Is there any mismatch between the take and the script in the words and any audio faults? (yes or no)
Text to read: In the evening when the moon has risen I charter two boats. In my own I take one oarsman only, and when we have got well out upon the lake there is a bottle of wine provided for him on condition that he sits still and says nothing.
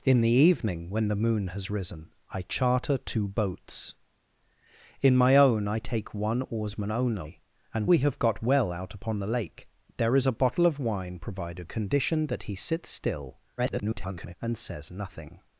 yes